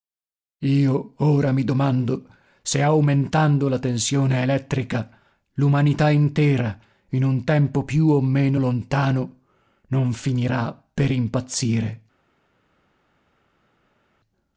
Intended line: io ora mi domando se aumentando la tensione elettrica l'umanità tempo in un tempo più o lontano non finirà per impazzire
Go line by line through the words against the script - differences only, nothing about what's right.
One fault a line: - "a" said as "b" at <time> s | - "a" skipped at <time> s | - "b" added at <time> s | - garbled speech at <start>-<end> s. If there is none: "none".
- "tempo" said as "intera" at 6.1 s
- "meno" added at 8.2 s